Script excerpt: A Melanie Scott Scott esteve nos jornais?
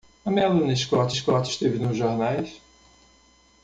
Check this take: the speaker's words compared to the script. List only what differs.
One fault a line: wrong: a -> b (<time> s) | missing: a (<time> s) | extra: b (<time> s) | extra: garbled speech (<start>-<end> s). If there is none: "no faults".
no faults